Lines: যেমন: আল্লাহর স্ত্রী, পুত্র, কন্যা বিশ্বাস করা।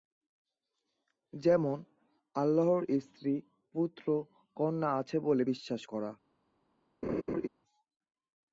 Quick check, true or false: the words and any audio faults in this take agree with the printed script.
false